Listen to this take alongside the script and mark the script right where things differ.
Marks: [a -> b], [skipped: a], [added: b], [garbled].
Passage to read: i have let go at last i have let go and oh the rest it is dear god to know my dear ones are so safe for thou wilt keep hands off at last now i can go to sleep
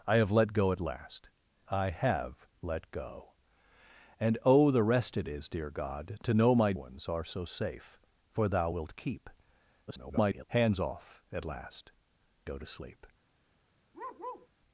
i have let go at last i have let go and oh the rest it is dear god to know my [skipped: dear] ones are so safe for thou wilt keep [garbled] hands off at last [skipped: now i can] go to sleep